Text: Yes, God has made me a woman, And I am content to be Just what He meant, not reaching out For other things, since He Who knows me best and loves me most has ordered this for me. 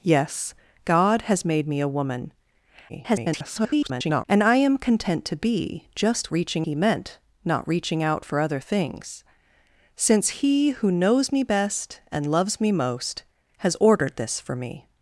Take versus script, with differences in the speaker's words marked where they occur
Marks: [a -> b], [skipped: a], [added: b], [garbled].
Yes, God has made me a woman, [garbled] And I am content to be Just [what -> reaching] He meant, not reaching out For other things, since He Who knows me best and loves me most has ordered this for me.